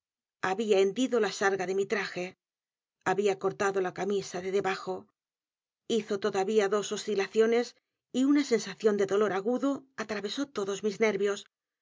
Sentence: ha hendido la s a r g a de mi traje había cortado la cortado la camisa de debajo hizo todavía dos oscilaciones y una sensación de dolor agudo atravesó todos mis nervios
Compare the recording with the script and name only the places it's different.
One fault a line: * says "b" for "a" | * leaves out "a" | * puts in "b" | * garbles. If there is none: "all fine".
* says "había" for "ha"
* leaves out "cortado la"